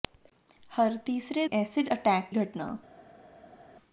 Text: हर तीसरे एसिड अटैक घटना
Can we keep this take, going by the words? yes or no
yes